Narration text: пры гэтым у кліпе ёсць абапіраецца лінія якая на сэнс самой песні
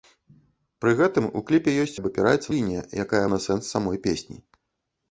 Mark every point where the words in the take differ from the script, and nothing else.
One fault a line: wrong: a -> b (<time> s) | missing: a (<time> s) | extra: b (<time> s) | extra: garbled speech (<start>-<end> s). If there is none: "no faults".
no faults